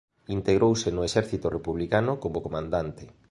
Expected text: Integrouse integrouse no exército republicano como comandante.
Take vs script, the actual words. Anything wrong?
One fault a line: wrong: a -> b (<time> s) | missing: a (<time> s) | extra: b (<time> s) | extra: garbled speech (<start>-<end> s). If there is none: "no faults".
missing: integrouse (0.9 s)